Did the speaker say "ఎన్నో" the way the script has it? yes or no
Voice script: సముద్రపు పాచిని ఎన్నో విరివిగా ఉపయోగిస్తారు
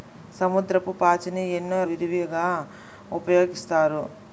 yes